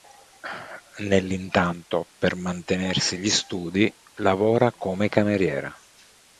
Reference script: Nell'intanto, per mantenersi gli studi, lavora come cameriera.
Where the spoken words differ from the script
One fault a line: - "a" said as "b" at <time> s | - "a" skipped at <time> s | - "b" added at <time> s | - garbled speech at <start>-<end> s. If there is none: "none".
none